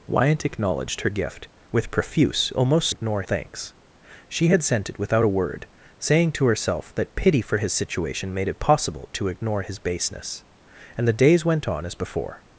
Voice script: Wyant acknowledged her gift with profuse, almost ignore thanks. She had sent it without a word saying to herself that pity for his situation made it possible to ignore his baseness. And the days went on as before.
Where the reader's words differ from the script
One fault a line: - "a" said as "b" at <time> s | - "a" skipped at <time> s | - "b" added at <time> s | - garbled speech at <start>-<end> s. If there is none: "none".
none